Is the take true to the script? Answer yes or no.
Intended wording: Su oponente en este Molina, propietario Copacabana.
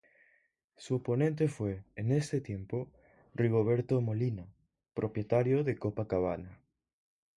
no